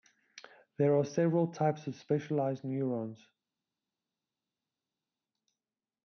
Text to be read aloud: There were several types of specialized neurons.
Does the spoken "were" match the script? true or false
false